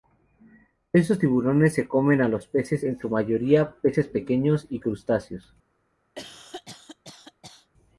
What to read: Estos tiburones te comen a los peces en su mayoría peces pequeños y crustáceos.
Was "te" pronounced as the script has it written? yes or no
no